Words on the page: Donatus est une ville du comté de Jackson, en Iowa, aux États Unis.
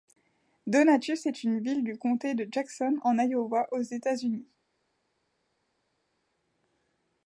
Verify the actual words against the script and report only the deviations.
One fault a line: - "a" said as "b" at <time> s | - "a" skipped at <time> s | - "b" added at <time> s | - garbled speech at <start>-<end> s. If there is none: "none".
none